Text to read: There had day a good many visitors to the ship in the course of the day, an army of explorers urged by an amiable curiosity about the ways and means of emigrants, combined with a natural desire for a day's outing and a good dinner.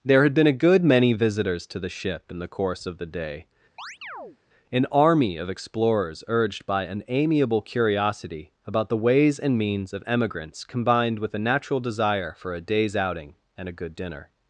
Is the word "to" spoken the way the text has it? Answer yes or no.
yes